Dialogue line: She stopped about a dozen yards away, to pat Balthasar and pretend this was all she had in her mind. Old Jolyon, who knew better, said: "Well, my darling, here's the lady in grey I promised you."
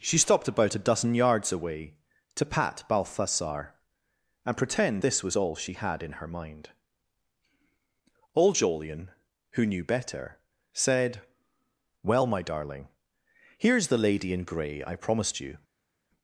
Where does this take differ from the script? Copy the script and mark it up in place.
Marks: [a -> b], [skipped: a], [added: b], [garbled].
She stopped about a dozen yards away, to pat Balthasar and pretend this was all she had in her mind. Old Jolyon, who knew better, said: "Well, my darling, here's the lady in grey I promised you."